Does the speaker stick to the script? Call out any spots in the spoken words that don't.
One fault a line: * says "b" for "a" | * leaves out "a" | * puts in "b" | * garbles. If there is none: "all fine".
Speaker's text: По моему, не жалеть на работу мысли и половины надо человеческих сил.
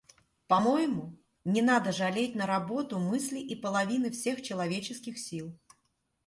* puts in "надо"
* says "всех" for "надо"